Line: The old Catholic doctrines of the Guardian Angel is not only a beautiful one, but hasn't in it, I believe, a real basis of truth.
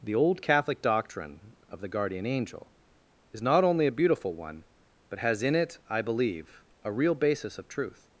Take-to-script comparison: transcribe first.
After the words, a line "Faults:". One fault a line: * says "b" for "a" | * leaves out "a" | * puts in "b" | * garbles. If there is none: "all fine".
The old Catholic doctrine of the Guardian Angel is not only a beautiful one, but has in it, I believe, a real basis of truth.
Faults:
* says "doctrine" for "doctrines"
* says "has" for "hasn't"